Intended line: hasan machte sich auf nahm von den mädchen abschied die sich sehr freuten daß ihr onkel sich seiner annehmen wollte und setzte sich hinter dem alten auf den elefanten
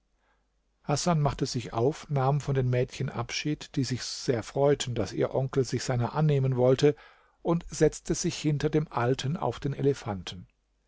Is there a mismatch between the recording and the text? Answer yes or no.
no